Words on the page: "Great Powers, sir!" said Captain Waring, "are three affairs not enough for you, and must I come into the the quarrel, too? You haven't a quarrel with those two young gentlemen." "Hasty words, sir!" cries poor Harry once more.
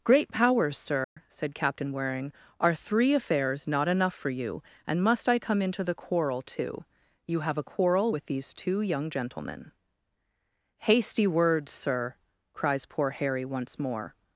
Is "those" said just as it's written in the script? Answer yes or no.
no